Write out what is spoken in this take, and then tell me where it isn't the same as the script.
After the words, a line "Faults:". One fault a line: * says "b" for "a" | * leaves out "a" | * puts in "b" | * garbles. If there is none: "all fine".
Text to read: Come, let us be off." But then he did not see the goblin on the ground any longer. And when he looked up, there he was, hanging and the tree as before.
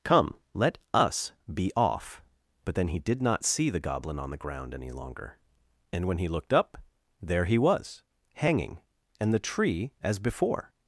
Come, let us be off." But then he did not see the goblin on the ground any longer. And when he looked up, there he was, hanging and the tree as before.
Faults:
all fine